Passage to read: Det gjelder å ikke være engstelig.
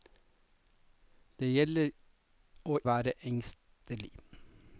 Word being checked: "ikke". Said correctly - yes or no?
no